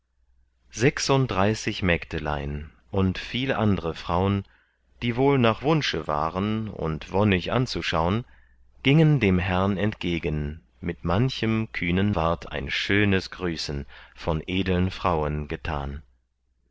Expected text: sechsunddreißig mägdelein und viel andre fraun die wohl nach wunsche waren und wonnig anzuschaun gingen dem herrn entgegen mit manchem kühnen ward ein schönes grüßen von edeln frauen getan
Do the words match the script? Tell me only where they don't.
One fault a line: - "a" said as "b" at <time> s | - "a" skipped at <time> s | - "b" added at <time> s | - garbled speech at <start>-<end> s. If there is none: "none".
none